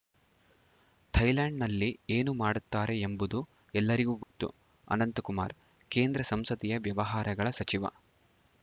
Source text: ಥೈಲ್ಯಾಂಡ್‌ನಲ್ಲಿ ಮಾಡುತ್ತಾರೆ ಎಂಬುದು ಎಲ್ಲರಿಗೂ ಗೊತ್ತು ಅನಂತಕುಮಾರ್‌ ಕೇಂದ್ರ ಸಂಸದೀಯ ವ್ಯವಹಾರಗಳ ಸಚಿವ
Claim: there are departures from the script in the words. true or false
true